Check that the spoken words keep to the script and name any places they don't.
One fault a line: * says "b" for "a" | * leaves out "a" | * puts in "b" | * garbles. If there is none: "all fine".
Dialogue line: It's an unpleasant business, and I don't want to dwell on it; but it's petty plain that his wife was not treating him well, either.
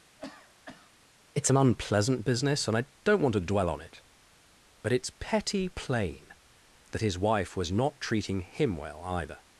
all fine